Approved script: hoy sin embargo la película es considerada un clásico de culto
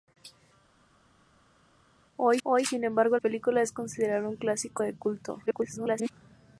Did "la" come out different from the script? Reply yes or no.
yes